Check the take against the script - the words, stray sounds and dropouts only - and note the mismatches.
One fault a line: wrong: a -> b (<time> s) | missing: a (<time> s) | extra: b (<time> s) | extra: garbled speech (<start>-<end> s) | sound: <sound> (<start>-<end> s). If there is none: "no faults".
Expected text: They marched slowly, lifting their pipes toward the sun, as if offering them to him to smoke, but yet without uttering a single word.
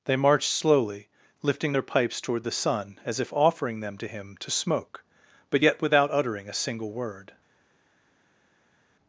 no faults